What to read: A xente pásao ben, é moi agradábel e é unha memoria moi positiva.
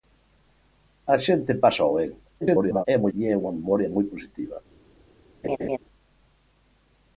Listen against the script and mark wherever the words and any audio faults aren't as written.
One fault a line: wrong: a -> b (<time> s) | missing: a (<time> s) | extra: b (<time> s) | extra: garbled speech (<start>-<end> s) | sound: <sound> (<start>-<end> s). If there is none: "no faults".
extra: garbled speech (2.4-2.9 s)
missing: agradábel (3.1 s)
sound: laugh (5.4-5.8 s)